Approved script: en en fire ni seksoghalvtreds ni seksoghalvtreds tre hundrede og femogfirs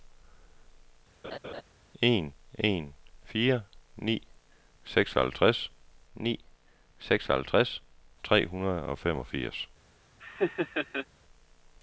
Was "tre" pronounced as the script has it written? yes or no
yes